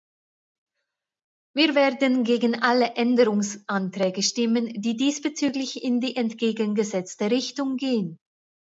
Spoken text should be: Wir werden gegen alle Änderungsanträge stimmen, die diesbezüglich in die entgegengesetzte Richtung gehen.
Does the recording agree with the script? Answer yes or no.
yes